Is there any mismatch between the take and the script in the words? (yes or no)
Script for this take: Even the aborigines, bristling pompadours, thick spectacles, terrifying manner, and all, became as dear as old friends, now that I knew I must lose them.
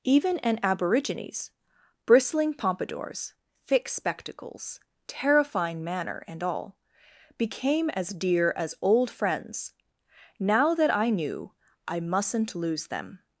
yes